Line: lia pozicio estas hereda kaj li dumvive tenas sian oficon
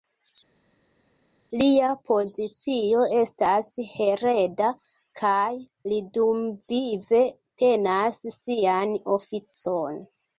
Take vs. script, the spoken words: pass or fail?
pass